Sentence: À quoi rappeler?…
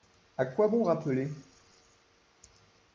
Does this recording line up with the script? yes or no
no